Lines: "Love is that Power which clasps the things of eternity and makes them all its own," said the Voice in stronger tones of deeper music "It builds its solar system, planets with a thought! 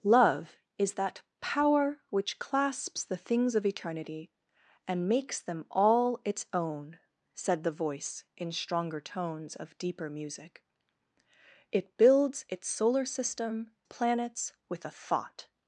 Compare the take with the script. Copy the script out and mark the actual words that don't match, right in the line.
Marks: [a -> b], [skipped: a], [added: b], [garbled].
"Love is that Power which clasps the things of eternity and makes them all its own," said the Voice in stronger tones of deeper music "It builds its solar system, planets with a thought!